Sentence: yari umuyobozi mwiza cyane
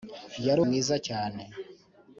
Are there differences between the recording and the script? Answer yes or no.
yes